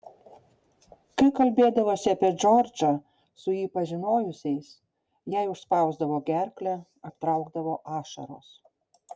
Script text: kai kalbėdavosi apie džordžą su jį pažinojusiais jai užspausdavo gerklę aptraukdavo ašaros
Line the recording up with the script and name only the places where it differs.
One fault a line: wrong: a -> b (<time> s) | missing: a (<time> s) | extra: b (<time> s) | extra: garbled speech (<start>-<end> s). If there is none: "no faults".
no faults